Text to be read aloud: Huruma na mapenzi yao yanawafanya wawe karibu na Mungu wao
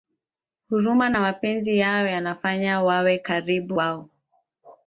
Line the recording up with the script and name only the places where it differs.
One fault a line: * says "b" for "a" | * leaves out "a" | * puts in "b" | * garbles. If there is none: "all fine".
* leaves out "na Mungu"